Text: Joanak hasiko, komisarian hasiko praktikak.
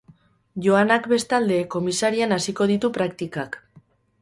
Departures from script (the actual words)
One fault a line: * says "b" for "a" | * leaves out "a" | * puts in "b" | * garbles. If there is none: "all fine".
* says "bestalde" for "hasiko"
* puts in "ditu"